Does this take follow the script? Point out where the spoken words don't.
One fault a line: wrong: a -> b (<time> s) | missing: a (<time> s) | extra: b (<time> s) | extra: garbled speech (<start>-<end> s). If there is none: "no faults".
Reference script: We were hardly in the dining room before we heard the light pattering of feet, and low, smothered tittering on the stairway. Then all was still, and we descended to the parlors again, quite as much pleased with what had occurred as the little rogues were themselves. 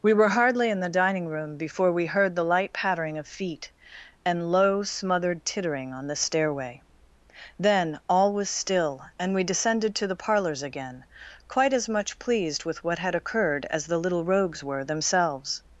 no faults